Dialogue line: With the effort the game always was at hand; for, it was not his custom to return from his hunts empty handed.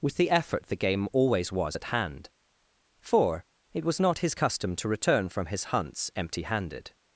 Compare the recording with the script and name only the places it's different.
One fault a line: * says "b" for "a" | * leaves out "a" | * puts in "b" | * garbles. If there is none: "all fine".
all fine